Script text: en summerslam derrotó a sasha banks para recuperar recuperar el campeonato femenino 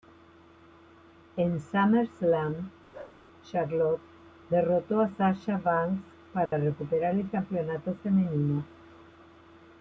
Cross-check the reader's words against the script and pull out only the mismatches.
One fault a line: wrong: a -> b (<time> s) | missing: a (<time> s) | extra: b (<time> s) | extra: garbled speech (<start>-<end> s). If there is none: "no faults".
extra: charlotte (3.4 s)
missing: recuperar (7.2 s)